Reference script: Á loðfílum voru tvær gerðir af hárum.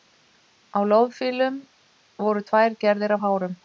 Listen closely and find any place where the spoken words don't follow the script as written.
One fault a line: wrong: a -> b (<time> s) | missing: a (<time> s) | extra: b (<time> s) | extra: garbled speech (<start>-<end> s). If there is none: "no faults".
no faults